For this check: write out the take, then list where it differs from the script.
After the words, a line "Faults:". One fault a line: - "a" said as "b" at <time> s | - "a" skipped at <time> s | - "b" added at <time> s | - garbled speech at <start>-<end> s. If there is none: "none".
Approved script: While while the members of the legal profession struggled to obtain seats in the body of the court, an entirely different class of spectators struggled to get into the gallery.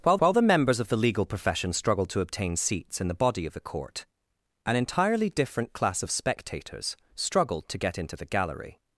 While while the members of the legal profession struggled to obtain seats in the body of the court, an entirely different class of spectators struggled to get into the gallery.
Faults:
none